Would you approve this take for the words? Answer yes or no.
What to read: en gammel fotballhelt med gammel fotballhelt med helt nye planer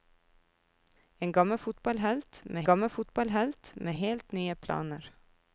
yes